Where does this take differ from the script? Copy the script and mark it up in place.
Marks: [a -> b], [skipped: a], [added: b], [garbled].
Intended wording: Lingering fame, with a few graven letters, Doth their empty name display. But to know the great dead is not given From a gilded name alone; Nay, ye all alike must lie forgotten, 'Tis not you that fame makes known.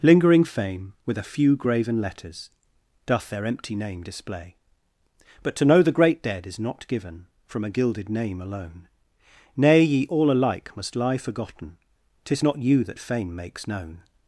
Lingering fame, with a few graven letters, Doth their empty name display. But to know the great dead is not given From a gilded name alone; Nay, ye all alike must lie forgotten, 'Tis not you that fame makes known.